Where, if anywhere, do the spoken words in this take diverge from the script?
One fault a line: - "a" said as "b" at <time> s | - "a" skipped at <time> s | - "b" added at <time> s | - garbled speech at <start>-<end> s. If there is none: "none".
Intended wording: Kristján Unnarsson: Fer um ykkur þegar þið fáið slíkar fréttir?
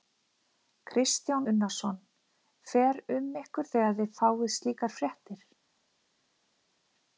none